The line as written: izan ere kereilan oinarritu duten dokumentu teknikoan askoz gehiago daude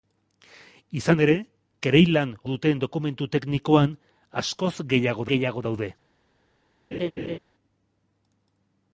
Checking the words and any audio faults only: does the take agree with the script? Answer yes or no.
no